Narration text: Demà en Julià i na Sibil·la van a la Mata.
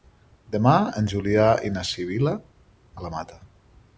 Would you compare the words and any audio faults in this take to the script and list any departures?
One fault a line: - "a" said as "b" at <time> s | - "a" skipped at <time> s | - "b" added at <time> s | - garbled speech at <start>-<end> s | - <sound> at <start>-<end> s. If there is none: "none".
- "van" skipped at 2.4 s